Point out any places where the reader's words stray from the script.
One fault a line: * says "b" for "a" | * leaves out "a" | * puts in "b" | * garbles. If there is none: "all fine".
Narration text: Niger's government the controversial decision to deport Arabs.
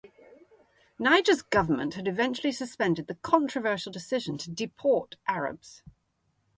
* puts in "had eventually suspended"